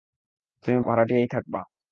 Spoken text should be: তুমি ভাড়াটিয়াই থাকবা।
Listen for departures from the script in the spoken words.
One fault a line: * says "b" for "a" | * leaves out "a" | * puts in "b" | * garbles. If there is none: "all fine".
all fine